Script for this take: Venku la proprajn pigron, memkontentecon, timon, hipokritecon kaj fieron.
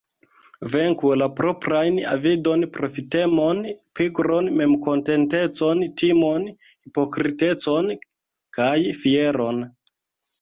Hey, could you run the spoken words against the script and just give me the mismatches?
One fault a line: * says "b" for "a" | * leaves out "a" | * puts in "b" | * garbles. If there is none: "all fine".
* puts in "avidon profitemon"